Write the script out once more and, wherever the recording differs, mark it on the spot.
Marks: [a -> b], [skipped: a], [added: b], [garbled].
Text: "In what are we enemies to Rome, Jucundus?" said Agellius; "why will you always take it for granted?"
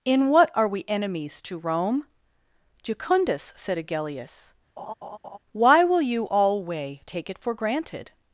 "In what are we enemies to Rome, Jucundus?" said Agellius; "why will you [always -> alway] take it for granted?"